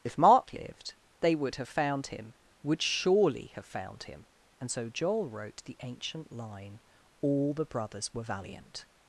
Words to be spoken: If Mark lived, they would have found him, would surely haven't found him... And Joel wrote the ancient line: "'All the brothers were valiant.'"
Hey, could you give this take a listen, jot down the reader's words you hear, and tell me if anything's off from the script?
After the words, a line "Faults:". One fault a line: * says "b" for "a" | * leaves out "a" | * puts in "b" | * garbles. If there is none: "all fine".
If Mark lived, they would have found him, would surely have found him... And so Joel wrote the ancient line: "'All the brothers were valiant.'"
Faults:
* says "have" for "haven't"
* puts in "so"